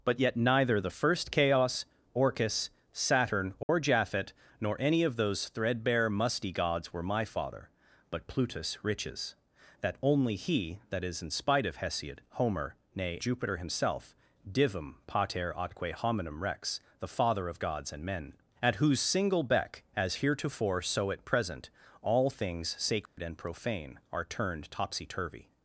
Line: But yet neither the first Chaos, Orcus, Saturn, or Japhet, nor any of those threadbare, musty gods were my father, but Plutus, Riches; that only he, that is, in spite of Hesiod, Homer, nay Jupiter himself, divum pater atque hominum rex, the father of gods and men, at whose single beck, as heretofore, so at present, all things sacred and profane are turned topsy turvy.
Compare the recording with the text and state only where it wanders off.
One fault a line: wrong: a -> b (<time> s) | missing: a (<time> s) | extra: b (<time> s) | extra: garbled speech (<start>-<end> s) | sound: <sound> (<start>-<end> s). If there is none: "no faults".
sound: dropout (3.6-3.7 s)
sound: dropout (23.1-23.2 s)